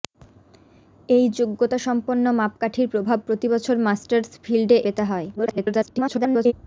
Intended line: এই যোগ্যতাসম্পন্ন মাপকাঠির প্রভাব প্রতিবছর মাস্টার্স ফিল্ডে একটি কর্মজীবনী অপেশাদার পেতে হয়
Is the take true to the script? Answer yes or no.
no